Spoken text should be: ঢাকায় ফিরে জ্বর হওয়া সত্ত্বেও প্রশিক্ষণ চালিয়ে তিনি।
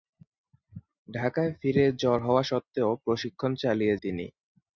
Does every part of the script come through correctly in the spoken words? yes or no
yes